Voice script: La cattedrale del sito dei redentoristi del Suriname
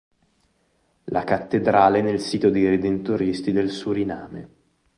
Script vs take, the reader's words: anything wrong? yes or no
yes